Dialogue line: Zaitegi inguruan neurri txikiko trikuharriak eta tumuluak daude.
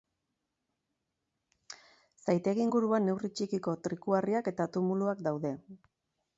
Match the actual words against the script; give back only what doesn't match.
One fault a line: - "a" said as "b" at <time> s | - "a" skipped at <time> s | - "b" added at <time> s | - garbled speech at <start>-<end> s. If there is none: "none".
none